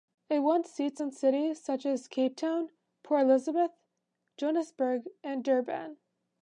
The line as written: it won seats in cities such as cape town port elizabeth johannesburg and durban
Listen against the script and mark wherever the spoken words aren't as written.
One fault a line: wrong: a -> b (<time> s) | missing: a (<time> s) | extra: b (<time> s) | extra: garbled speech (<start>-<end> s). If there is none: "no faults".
no faults